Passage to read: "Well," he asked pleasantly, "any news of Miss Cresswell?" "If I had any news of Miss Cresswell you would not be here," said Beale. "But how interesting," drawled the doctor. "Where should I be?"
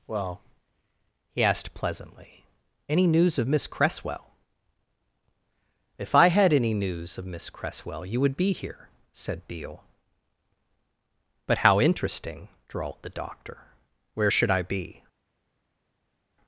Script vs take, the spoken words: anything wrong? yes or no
yes